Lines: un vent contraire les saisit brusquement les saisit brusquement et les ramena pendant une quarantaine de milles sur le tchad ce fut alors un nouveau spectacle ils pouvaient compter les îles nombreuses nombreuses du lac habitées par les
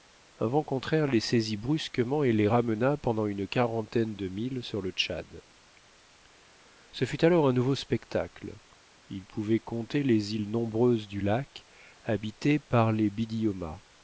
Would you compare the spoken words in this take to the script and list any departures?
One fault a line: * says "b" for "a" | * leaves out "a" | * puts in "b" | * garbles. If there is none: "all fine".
* leaves out "les saisit brusquement"
* leaves out "nombreuses"